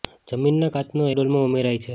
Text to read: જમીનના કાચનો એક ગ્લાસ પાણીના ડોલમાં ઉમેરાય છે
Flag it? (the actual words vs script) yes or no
yes